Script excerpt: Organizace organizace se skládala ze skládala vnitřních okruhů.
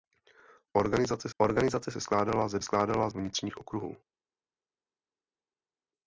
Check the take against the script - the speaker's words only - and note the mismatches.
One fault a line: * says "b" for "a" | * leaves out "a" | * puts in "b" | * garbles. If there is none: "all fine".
all fine